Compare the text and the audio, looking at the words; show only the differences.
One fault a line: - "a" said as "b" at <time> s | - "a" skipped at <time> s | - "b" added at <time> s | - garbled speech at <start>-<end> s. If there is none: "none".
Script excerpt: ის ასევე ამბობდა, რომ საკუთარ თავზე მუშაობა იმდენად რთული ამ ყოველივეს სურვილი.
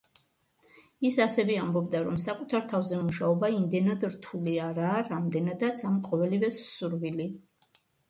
- "არაა რამდენადაც" added at 4.7 s